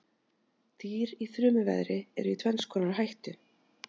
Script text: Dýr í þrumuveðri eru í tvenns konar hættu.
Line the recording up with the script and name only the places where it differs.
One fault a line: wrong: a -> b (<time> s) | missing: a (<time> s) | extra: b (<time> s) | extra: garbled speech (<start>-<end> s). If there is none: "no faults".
no faults